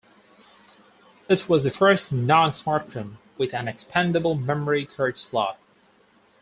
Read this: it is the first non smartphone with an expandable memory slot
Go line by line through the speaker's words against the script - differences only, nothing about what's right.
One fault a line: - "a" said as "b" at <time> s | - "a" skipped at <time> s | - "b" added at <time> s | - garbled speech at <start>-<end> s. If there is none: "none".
- "is" said as "was" at 1.5 s
- "card" added at 4.8 s